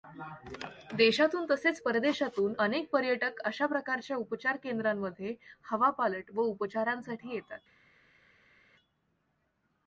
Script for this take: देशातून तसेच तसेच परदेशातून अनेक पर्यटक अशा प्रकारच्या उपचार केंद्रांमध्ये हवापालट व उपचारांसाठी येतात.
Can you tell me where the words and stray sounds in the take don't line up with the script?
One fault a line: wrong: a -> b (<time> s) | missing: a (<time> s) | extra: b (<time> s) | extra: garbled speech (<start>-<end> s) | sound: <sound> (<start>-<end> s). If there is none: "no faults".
missing: तसेच (1.8 s)